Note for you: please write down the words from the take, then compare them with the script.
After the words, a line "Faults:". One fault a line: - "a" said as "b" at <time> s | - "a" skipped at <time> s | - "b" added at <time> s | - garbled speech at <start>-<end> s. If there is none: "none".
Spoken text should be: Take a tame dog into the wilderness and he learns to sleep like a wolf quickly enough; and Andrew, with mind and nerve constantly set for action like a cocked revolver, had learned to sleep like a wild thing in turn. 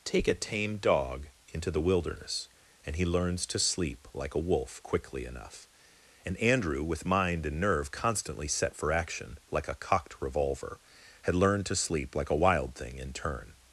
Take a tame dog into the wilderness and he learns to sleep like a wolf quickly enough; and Andrew, with mind and nerve constantly set for action like a cocked revolver, had learned to sleep like a wild thing in turn.
Faults:
none